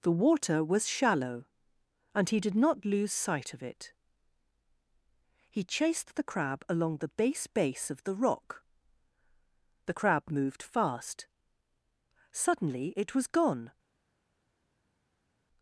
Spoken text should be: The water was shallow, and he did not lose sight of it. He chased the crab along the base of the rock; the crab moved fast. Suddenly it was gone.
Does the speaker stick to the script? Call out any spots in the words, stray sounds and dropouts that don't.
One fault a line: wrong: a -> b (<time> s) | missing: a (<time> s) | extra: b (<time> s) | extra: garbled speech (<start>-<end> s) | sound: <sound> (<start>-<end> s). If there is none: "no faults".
extra: base (7.5 s)